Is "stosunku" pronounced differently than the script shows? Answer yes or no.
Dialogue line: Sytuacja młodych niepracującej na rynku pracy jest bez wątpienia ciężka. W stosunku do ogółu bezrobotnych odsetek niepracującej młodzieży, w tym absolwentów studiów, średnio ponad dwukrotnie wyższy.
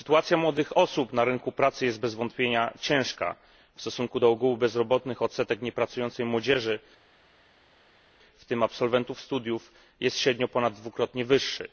no